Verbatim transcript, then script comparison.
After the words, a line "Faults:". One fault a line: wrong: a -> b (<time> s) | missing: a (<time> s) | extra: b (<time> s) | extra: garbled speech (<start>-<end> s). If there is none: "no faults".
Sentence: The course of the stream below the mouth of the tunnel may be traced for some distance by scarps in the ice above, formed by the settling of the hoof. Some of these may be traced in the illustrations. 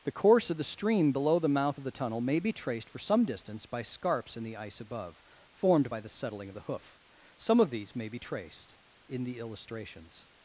The course of the stream below the mouth of the tunnel may be traced for some distance by scarps in the ice above, formed by the settling of the hoof. Some of these may be traced in the illustrations.
Faults:
no faults